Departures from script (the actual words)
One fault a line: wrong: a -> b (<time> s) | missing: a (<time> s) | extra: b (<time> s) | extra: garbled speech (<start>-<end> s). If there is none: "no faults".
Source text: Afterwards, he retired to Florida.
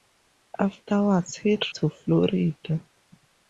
missing: retired (1.6 s)